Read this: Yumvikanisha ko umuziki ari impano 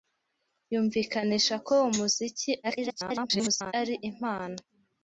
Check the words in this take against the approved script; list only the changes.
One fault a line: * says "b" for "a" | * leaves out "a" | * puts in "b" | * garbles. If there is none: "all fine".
* garbles